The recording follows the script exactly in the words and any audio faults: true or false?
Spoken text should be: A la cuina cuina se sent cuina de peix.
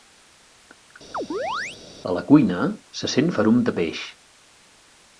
false